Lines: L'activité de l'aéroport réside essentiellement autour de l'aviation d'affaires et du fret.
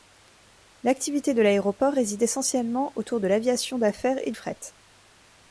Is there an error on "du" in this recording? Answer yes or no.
yes